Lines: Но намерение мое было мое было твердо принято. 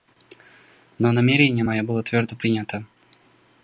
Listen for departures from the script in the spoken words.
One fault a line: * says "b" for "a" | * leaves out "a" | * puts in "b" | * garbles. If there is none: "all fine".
* leaves out "мое было"